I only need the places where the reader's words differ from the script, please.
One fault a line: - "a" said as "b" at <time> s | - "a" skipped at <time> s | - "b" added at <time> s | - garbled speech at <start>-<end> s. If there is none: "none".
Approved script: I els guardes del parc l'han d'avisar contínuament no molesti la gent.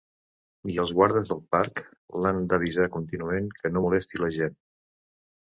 - "que" added at 3.6 s